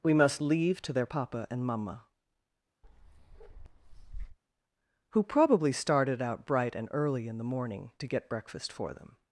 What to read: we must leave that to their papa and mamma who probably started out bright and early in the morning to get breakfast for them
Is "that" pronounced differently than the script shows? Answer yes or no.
yes